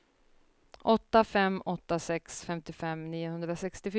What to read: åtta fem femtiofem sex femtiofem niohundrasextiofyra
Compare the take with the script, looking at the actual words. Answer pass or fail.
fail